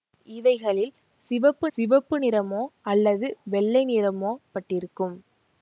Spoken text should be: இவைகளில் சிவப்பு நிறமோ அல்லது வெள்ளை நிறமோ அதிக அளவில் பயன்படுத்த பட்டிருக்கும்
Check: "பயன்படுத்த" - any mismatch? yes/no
yes